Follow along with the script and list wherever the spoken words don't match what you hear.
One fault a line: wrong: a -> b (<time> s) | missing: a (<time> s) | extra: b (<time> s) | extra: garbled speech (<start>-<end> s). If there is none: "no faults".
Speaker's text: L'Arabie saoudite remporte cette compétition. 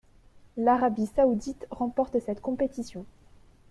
no faults